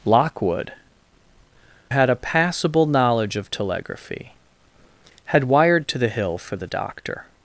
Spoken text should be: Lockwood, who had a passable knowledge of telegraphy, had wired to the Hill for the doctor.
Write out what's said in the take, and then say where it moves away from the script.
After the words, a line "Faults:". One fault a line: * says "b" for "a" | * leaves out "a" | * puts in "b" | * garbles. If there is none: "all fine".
Lockwood, had a passable knowledge of telegraphy, had wired to the Hill for the doctor.
Faults:
* leaves out "who"